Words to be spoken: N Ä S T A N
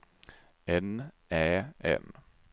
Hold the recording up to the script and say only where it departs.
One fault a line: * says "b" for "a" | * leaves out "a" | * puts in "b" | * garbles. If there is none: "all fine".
* leaves out "S T A"